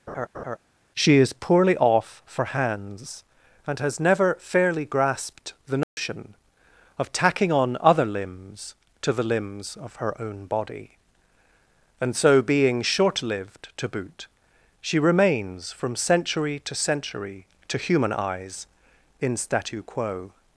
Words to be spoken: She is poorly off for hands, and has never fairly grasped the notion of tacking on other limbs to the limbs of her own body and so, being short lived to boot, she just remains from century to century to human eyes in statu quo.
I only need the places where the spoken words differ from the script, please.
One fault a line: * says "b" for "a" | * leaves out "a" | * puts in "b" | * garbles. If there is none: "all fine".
* leaves out "just"